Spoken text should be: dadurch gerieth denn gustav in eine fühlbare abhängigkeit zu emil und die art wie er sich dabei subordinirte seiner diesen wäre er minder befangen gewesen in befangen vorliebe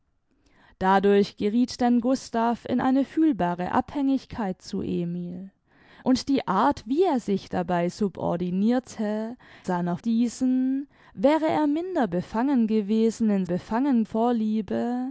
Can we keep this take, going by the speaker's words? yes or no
yes